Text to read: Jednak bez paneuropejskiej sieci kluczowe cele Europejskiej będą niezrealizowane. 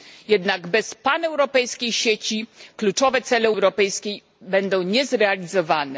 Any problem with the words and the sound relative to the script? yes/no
no